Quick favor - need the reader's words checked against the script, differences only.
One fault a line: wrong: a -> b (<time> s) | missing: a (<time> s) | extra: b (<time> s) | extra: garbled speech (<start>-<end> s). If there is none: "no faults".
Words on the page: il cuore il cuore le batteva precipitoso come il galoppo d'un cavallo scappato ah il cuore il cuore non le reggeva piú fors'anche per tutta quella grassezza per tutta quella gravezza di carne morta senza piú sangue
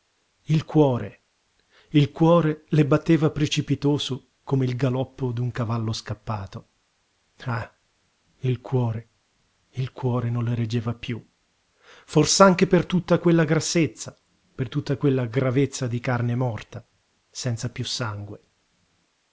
no faults